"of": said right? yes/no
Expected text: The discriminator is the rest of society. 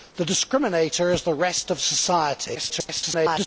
yes